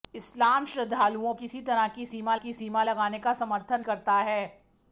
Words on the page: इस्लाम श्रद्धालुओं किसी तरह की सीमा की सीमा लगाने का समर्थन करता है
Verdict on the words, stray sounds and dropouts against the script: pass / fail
pass